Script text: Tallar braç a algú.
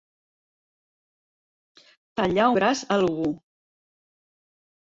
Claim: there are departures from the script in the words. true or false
false